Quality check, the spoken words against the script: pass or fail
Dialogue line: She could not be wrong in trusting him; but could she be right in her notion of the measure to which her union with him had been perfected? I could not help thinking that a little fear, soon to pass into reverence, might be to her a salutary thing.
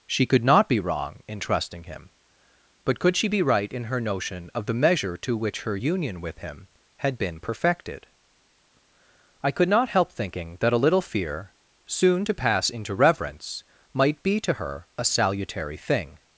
pass